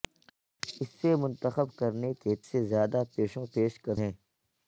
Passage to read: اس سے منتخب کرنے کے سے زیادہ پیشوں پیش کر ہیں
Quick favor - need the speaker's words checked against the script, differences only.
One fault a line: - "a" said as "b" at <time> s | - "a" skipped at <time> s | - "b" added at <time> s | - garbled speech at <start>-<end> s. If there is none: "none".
none